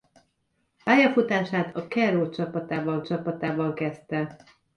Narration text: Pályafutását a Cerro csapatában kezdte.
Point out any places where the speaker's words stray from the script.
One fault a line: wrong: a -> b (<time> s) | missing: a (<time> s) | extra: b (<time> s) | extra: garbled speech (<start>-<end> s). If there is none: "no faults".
extra: csapatában (3.0 s)